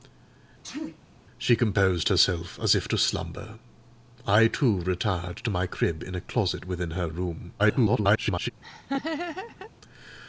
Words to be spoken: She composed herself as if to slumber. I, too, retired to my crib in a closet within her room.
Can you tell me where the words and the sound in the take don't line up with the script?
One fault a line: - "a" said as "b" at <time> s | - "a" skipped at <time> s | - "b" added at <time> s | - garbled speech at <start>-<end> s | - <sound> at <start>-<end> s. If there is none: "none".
- sneeze at 0.6-1.0 s
- garbled speech at 7.6-8.5 s
- laugh at 8.6-9.7 s